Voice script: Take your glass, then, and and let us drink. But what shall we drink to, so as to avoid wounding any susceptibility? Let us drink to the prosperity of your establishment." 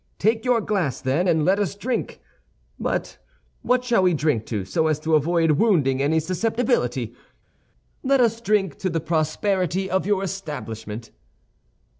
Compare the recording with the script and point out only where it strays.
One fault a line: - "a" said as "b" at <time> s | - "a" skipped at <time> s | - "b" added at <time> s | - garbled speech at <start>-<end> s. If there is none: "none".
- "and" skipped at 1.4 s